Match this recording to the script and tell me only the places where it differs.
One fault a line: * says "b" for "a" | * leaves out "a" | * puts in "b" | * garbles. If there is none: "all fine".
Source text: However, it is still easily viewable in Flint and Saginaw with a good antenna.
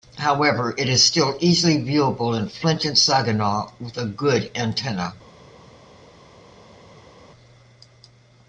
all fine